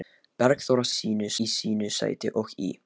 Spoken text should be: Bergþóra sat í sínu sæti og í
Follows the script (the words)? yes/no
no